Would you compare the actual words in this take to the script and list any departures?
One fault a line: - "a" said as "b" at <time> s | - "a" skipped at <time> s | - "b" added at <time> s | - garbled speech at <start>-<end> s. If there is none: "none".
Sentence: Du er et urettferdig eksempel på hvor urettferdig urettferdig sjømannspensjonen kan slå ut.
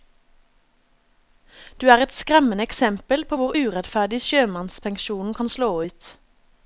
- "urettferdig" said as "skremmende" at 2.1 s
- "urettferdig" skipped at 4.2 s